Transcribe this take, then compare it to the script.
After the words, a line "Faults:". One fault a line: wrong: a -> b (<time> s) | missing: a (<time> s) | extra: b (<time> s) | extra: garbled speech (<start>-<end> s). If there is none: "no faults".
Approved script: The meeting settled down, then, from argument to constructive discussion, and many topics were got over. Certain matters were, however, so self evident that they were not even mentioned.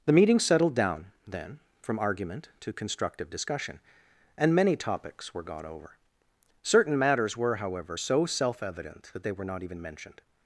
The meeting settled down, then, from argument to constructive discussion, and many topics were got over. Certain matters were, however, so self evident that they were not even mentioned.
Faults:
no faults